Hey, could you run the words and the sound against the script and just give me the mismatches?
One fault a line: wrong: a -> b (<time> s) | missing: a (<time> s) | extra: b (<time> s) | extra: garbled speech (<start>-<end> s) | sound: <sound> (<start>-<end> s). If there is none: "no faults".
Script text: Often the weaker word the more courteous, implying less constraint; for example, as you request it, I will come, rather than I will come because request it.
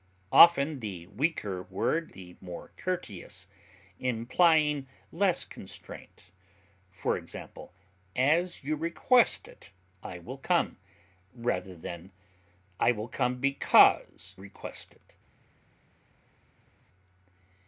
no faults